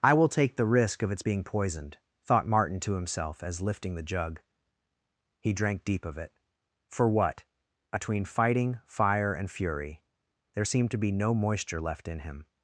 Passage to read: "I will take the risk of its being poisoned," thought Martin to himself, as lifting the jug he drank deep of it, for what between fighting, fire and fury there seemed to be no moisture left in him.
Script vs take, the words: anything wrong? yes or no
no